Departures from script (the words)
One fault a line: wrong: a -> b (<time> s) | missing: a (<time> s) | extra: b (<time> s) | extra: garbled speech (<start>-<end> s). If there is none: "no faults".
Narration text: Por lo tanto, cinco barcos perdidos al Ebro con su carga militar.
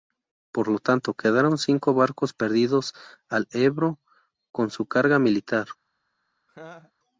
extra: quedaron (1.1 s)